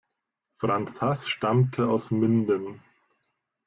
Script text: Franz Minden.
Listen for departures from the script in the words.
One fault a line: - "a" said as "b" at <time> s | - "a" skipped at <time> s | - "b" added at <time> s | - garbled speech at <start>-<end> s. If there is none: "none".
- "Haß stammte aus" added at 1.0 s